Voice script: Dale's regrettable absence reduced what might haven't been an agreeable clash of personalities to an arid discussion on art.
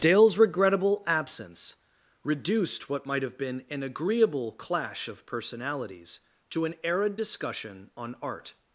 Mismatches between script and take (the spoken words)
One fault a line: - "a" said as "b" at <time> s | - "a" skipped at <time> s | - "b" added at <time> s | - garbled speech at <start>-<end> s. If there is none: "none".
- "haven't" said as "have" at 3.2 s